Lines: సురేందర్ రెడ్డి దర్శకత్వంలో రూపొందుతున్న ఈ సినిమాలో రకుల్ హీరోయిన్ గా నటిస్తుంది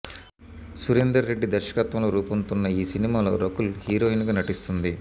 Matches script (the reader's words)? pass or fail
pass